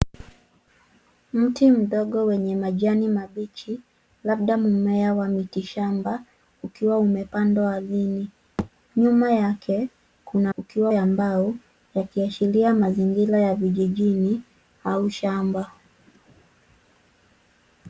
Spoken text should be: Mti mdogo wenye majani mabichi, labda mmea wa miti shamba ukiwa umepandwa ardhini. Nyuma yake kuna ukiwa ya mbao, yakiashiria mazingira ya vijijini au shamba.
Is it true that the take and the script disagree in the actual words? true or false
false